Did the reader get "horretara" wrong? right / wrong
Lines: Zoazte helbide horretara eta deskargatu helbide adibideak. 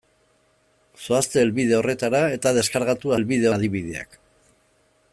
right